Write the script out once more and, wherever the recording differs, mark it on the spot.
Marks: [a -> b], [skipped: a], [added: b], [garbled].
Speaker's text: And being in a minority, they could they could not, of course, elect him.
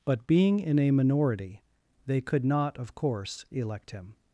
[And -> But] being in a minority, they could [skipped: they could] not, of course, elect him.